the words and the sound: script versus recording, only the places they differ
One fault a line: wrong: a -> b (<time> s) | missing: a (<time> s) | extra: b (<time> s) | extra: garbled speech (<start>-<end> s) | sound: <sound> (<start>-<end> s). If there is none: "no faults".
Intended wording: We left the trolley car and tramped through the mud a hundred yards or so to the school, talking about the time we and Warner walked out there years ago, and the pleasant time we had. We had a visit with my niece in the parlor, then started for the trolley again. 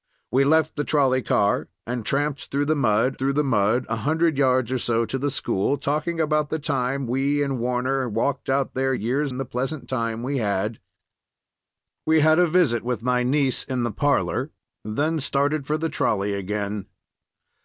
extra: through the mud (3.1 s)
missing: ago (9.3 s)